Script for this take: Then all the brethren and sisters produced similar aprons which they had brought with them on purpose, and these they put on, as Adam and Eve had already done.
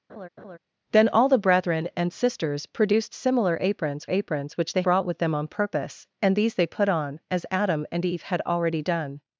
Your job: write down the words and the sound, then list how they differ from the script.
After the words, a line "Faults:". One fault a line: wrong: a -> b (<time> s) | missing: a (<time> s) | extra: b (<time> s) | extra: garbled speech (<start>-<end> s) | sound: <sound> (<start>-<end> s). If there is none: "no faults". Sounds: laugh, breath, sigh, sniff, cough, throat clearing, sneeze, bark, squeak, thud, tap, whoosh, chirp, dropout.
Then all the brethren and sisters produced similar aprons aprons which they brought with them on purpose, and these they put on, as Adam and Eve had already done.
Faults:
sound: laugh (0.1-0.6 s)
extra: aprons (4.1 s)
missing: had (4.8 s)